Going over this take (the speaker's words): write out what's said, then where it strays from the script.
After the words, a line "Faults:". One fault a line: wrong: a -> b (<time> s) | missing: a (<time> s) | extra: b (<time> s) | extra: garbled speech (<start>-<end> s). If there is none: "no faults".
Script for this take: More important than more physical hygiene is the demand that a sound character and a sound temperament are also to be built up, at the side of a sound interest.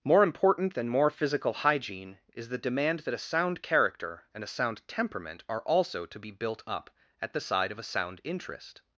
More important than more physical hygiene is the demand that a sound character and a sound temperament are also to be built up, at the side of a sound interest.
Faults:
no faults